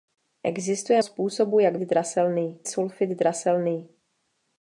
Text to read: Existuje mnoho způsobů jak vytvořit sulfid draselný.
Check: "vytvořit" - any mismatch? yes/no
yes